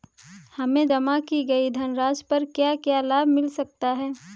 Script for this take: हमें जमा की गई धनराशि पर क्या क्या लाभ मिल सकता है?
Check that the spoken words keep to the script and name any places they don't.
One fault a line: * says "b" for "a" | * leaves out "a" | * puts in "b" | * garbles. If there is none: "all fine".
all fine